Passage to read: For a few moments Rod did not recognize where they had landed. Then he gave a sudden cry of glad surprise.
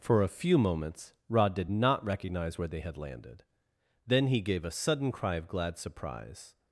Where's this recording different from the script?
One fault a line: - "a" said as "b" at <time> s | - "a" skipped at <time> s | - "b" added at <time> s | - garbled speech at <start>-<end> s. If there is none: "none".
none